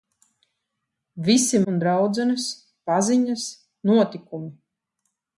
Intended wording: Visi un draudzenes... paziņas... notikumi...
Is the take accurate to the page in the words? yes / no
yes